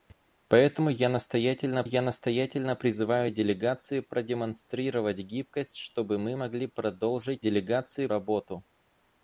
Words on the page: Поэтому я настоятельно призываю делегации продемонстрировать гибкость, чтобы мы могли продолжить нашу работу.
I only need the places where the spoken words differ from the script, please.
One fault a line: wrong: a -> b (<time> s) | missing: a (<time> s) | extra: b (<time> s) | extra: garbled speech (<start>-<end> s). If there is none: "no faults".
extra: я настоятельно (1.8 s)
wrong: нашу -> делегации (7.4 s)